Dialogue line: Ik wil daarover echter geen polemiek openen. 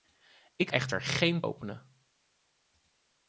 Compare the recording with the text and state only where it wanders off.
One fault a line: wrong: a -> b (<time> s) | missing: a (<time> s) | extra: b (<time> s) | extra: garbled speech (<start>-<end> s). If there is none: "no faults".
missing: wil daarover (0.7 s)
missing: polemiek (1.5 s)